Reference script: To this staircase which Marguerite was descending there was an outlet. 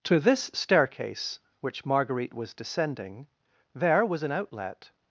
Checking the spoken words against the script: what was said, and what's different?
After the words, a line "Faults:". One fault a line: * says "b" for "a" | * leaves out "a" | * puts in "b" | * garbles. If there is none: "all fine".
To this staircase which Marguerite was descending there was an outlet.
Faults:
all fine